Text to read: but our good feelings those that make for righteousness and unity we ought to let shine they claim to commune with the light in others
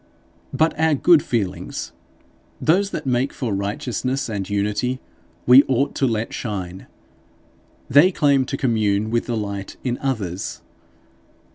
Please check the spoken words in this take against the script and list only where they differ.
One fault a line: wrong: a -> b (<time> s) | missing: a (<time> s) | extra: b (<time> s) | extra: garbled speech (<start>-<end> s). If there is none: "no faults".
no faults